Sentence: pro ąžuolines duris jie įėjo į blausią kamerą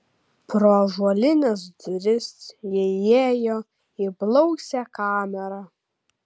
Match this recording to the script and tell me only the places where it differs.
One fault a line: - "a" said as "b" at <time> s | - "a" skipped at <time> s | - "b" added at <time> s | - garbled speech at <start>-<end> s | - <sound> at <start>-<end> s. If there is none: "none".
none